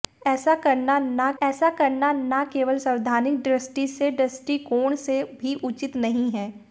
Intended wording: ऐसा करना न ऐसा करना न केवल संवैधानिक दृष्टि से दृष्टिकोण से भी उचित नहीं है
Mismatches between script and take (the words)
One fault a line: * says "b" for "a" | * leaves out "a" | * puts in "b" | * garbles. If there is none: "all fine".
all fine